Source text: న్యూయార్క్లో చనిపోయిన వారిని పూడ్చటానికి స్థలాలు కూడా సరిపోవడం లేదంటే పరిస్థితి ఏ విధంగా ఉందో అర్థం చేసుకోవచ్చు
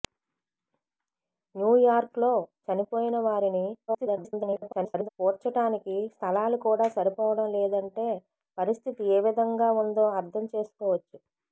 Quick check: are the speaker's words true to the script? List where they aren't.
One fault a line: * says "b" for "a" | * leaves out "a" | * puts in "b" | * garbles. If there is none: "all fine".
* garbles